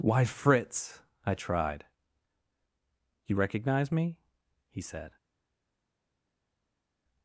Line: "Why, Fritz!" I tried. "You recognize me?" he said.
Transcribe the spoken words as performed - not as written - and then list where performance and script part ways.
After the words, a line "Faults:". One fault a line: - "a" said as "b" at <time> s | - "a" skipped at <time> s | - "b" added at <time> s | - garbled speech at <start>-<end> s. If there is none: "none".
"Why, Fritz!" I tried. "You recognize me?" he said.
Faults:
none